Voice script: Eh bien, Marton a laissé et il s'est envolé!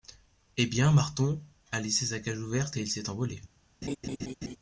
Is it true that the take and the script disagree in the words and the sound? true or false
true